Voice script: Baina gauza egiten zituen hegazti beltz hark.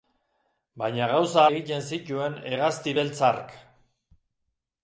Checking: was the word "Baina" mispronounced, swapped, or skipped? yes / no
no